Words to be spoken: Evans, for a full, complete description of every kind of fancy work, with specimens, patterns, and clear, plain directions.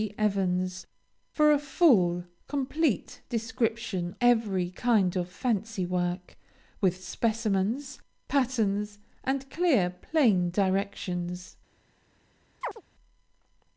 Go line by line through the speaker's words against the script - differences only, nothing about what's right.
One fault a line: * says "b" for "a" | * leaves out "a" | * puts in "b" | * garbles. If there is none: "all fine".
* leaves out "of"